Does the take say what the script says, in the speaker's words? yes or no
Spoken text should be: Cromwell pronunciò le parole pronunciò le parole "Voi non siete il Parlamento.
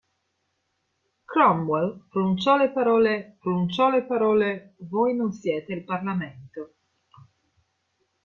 yes